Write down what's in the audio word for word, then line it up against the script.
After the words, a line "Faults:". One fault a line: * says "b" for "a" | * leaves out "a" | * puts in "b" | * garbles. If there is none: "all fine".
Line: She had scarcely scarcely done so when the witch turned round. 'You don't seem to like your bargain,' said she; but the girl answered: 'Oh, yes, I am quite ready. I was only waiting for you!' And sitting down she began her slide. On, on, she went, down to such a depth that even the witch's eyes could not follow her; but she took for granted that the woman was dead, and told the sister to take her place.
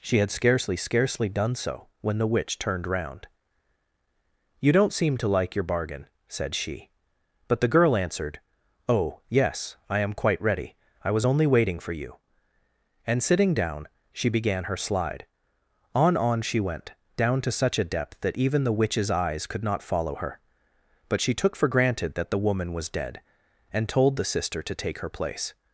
She had scarcely scarcely done so when the witch turned round. 'You don't seem to like your bargain,' said she; but the girl answered: 'Oh, yes, I am quite ready. I was only waiting for you!' And sitting down she began her slide. On, on, she went, down to such a depth that even the witch's eyes could not follow her; but she took for granted that the woman was dead, and told the sister to take her place.
Faults:
all fine